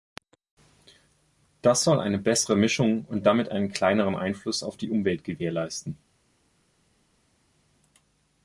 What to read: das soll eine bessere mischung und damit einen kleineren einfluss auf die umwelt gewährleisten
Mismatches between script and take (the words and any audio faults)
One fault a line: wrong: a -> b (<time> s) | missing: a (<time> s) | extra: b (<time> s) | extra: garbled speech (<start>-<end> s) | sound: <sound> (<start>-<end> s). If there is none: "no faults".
no faults